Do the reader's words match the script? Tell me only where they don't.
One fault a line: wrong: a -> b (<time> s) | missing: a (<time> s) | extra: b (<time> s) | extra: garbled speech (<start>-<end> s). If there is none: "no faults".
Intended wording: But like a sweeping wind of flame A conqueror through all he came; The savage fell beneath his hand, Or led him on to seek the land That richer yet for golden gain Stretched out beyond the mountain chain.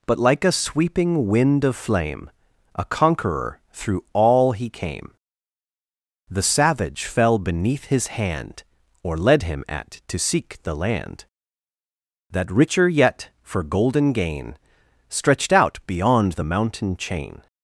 wrong: on -> at (9.7 s)